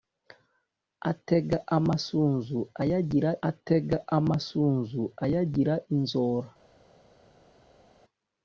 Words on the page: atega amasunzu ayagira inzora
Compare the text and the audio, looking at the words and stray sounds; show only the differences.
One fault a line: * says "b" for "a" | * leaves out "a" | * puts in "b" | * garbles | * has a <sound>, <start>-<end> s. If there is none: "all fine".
* puts in "atega amasunzu ayagira"